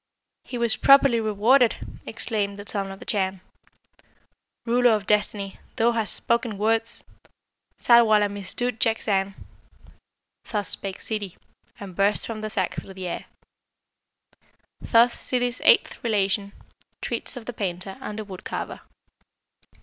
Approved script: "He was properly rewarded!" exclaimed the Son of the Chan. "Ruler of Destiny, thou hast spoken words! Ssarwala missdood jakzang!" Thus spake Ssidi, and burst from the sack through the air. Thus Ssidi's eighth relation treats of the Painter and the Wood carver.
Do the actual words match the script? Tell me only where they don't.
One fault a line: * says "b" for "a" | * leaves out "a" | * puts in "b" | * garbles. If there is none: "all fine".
all fine